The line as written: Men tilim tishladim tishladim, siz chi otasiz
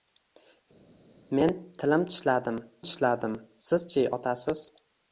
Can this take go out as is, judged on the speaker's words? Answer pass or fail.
pass